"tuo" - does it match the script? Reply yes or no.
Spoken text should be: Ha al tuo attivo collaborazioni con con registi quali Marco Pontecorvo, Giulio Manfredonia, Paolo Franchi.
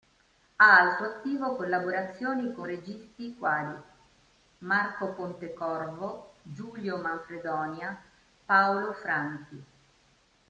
no